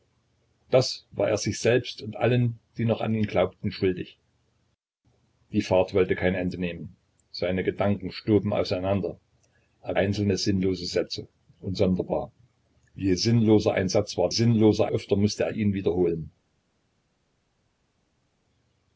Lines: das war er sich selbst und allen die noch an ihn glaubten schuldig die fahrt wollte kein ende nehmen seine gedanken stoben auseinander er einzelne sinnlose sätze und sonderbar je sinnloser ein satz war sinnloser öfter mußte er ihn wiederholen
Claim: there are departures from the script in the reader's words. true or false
false